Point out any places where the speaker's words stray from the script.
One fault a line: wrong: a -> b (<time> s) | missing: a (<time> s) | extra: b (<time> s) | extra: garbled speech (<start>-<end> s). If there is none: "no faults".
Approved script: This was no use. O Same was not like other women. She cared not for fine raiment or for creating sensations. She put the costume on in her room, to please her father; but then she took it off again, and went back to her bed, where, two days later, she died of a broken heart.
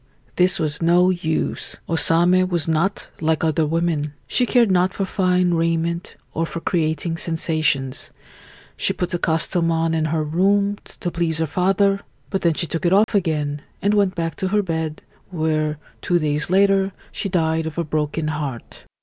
no faults